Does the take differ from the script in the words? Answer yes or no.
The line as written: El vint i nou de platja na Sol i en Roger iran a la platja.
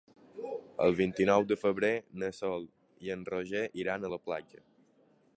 yes